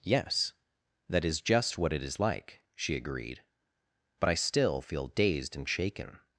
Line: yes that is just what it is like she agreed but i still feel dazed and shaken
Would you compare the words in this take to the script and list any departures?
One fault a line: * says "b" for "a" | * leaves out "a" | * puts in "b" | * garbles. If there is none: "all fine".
all fine